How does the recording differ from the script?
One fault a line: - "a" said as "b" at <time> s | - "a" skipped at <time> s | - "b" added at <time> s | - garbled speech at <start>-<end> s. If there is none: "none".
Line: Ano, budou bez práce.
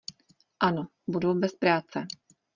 none